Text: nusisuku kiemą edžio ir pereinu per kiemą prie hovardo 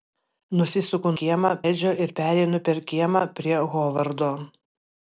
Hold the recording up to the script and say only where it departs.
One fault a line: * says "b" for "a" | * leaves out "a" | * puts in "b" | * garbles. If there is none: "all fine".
all fine